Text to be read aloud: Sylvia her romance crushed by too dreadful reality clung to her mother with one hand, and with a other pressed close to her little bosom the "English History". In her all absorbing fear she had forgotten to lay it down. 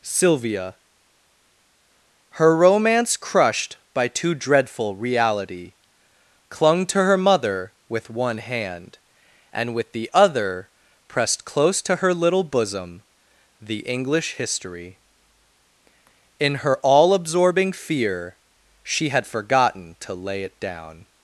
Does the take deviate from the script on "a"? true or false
true